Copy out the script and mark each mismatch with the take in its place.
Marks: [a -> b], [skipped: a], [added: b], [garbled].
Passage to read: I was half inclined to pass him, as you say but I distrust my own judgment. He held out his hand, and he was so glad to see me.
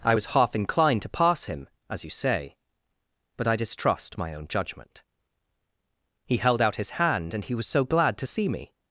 I was half inclined to pass him, as you say but I distrust my own judgment. He held out his hand, and he was so glad to see me.